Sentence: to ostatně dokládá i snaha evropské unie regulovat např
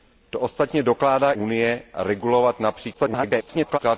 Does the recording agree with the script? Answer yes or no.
no